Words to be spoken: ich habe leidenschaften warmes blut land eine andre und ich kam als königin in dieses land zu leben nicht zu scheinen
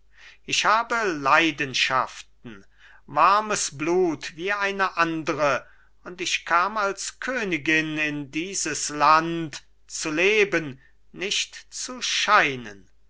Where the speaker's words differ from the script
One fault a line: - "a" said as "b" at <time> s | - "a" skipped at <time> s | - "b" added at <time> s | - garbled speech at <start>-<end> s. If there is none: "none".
- "land" said as "wie" at 4.4 s